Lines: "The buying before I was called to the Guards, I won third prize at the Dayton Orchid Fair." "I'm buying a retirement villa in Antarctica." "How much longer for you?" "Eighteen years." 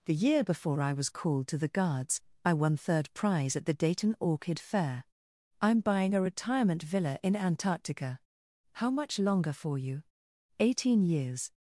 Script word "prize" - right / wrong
right